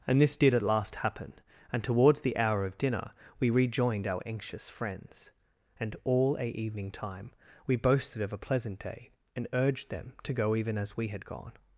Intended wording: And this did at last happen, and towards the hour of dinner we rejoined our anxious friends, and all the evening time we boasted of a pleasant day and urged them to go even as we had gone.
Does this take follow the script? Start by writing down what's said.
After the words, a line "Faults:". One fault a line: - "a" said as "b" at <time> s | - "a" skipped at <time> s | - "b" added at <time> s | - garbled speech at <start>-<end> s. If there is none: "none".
And this did at last happen, and towards the hour of dinner we rejoined our anxious friends, and all a evening time we boasted of a pleasant day and urged them to go even as we had gone.
Faults:
- "the" said as "a" at 6.4 s